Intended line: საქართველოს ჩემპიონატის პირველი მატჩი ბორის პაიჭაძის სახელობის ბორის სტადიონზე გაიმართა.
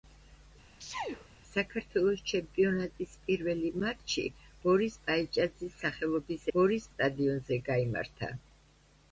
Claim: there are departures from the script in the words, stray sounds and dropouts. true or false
true